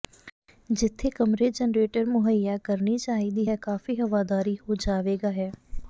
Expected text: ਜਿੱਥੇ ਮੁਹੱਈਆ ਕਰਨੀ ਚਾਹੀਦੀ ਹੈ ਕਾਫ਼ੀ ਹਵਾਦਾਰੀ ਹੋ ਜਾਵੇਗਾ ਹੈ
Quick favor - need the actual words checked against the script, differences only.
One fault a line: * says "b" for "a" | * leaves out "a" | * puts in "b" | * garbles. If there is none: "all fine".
* puts in "ਕਮਰੇ ਜਰਨੇਟਰ"